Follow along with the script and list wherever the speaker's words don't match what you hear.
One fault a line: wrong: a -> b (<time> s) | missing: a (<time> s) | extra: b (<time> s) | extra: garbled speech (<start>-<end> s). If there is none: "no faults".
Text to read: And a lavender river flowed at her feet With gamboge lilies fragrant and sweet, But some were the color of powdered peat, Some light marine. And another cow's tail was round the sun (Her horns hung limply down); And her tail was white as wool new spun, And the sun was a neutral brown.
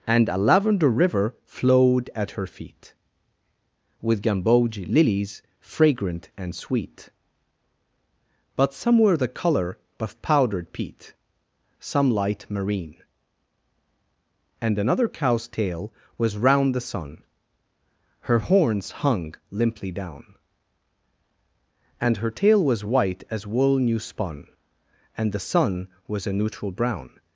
no faults